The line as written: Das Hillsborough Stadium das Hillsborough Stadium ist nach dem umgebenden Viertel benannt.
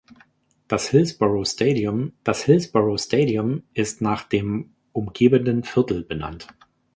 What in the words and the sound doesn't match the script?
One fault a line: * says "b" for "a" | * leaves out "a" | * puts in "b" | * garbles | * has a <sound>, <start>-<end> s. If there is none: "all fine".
all fine